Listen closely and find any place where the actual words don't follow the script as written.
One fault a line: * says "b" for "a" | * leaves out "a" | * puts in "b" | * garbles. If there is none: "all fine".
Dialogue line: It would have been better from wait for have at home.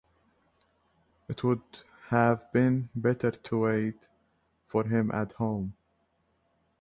* says "to" for "from"
* says "him" for "have"